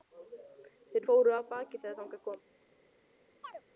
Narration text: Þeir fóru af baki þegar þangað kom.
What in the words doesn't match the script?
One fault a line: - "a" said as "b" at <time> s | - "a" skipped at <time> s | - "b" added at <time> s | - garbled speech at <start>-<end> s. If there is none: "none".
none